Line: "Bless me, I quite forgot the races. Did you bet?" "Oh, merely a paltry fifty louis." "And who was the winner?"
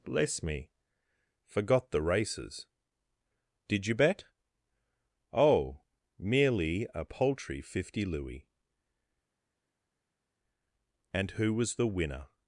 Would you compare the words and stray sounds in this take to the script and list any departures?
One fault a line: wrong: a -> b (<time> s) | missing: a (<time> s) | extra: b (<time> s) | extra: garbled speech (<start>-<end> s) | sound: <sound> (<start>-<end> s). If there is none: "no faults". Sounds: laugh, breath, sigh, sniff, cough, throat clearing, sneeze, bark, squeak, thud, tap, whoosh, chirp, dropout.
missing: I quite (0.7 s)